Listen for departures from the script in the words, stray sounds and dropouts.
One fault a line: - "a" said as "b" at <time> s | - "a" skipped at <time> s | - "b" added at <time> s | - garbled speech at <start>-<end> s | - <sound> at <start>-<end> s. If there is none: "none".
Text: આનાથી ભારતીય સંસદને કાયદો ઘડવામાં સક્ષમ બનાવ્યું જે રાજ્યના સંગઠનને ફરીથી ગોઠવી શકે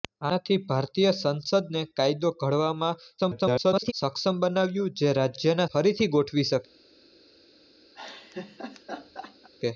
- garbled speech at 3.2-3.9 s
- "સંગઠનને" skipped at 5.7 s
- laugh at 7.9-9.5 s